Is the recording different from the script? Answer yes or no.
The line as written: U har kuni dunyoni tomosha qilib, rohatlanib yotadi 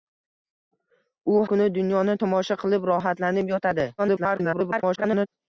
yes